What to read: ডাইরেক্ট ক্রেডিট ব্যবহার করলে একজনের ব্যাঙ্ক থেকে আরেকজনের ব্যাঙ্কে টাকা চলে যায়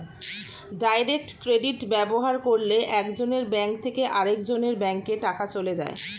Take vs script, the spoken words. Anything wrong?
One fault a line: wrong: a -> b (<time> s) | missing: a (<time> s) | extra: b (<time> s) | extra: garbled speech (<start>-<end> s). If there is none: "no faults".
no faults